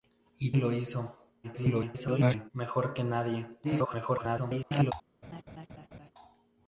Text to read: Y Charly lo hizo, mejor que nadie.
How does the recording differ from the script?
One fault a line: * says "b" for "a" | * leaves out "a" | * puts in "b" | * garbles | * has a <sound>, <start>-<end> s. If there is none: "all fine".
* leaves out "Charly"
* garbles
* garbles
* has a laugh, 5.2-6.1 s